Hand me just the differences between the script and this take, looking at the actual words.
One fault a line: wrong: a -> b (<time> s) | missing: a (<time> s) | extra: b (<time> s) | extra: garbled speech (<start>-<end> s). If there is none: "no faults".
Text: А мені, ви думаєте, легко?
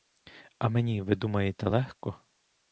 no faults